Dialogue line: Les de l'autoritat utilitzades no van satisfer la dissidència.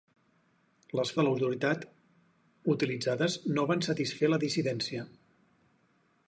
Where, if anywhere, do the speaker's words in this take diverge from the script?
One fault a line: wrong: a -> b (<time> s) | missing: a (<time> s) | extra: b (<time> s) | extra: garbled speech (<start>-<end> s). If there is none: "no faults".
no faults